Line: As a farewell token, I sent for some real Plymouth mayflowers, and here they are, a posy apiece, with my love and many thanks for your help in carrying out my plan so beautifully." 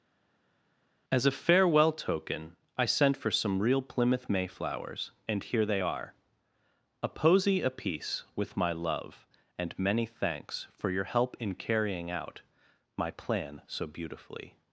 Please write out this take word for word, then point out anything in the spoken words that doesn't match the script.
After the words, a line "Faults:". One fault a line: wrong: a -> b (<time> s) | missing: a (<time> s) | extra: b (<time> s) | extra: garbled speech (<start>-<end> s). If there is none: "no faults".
As a farewell token, I sent for some real Plymouth mayflowers, and here they are, a posy apiece, with my love and many thanks for your help in carrying out my plan so beautifully."
Faults:
no faults